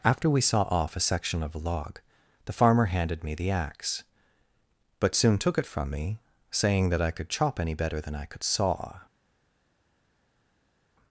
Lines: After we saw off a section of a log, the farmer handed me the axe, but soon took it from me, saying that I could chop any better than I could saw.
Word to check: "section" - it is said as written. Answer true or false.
true